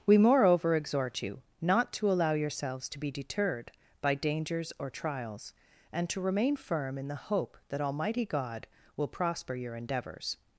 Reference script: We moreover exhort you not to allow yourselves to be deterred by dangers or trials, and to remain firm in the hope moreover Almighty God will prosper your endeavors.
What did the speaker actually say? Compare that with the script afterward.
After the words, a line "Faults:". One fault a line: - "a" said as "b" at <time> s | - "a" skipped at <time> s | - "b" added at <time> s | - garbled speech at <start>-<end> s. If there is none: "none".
We moreover exhort you not to allow yourselves to be deterred by dangers or trials, and to remain firm in the hope that Almighty God will prosper your endeavors.
Faults:
- "moreover" said as "that" at 7.7 s